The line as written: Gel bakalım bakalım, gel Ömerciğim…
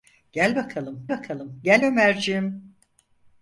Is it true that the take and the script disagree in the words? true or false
false